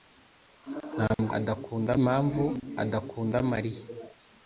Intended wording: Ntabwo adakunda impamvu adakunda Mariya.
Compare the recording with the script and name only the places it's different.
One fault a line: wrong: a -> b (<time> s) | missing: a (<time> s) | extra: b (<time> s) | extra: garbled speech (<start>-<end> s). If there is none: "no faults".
no faults